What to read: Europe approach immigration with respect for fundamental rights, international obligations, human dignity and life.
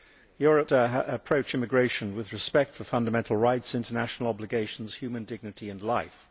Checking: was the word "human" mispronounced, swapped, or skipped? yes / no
no